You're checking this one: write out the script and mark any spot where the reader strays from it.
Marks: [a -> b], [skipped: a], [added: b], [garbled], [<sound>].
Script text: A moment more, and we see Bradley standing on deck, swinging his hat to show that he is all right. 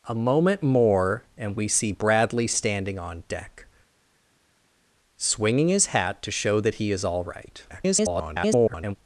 A moment more, and we see Bradley standing on deck, swinging his hat to show that he is all right. [garbled]